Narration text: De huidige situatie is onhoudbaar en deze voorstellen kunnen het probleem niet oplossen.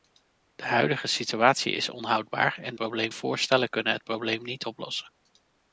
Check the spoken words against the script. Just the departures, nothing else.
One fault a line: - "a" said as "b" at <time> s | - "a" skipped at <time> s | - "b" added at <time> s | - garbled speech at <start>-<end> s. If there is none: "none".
- "deze" said as "probleem" at 2.7 s